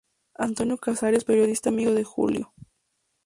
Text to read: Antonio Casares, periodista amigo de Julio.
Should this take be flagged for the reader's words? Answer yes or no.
no